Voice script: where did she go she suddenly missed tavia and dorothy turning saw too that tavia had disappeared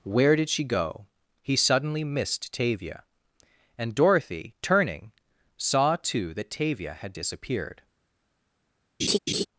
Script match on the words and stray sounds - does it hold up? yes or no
no